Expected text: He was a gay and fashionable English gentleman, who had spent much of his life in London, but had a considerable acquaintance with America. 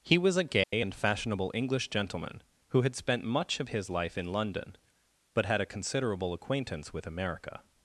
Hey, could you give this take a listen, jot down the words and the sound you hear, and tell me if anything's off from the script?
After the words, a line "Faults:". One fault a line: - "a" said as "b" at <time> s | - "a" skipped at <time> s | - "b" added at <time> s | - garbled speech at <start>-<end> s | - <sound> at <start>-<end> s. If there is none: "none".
He was a gay and fashionable English gentleman, who had spent much of his life in London, but had a considerable acquaintance with America.
Faults:
- dropout at 0.6-0.7 s